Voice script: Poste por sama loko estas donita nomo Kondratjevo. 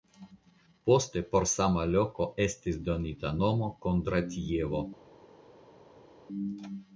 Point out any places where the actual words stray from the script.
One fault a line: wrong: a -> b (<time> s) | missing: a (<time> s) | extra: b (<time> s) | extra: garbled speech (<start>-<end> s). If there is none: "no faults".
wrong: estas -> estis (2.5 s)